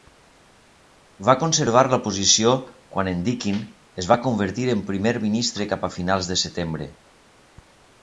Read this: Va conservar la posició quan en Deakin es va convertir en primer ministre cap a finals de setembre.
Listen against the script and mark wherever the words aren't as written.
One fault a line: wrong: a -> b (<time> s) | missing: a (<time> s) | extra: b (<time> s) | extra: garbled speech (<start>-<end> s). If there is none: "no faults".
no faults